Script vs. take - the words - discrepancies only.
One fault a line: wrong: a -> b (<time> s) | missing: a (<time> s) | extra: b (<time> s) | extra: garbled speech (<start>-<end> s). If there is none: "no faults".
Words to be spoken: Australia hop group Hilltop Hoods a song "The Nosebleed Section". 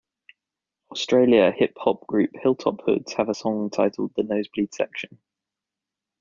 extra: hip (1.5 s)
extra: have (3.1 s)
extra: titled (3.7 s)